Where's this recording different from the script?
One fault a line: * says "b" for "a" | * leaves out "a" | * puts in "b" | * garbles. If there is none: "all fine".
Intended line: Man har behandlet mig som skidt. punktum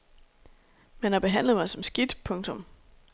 all fine